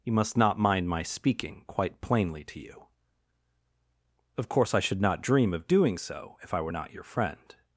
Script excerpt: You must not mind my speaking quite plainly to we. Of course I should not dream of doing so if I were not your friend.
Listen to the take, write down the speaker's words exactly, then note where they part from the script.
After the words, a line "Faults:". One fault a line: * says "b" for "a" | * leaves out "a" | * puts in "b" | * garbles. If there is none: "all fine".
You must not mind my speaking quite plainly to you. Of course I should not dream of doing so if I were not your friend.
Faults:
* says "you" for "we"